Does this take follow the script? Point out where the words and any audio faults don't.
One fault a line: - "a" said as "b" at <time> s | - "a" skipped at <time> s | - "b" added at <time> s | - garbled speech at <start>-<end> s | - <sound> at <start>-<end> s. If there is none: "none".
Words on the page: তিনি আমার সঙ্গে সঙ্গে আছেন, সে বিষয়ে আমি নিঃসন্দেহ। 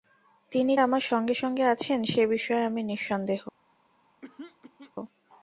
- throat clearing at 4.2-4.9 s